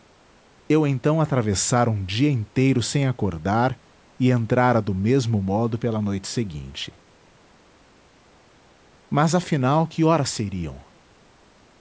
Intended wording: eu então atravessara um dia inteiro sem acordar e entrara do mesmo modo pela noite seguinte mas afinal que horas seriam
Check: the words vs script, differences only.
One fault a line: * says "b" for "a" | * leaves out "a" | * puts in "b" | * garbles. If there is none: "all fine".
all fine